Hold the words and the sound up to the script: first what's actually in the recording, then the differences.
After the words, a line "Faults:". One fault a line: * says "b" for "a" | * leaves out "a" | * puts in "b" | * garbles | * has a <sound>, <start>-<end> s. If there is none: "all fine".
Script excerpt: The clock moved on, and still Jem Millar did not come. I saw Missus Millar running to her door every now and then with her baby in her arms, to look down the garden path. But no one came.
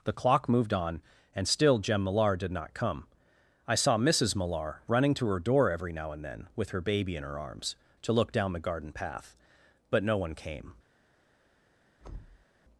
The clock moved on, and still Jem Millar did not come. I saw Missus Millar running to her door every now and then with her baby in her arms, to look down the garden path. But no one came.
Faults:
* has a thud, 12.0-12.5 s